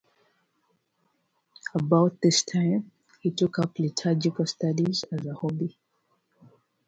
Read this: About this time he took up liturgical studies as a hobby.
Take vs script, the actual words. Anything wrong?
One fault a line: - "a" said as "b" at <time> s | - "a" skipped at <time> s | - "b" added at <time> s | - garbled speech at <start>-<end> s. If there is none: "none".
none